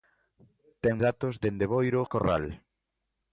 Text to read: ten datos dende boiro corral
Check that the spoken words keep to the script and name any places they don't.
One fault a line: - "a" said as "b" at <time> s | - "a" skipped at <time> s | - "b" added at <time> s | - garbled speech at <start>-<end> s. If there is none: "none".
none